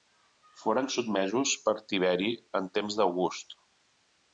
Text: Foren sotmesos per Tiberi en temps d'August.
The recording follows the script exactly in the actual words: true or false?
true